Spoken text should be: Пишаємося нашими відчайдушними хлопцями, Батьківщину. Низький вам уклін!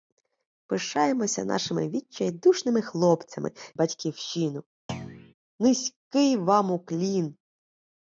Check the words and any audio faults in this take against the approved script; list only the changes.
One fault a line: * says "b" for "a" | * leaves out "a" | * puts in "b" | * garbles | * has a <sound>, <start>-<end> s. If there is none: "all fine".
* has a thud, 4.9-5.3 s